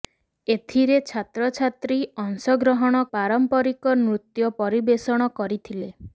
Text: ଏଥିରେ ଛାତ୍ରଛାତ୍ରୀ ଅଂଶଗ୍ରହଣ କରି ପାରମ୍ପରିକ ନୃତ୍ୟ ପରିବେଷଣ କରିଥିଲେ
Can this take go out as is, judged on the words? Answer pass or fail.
fail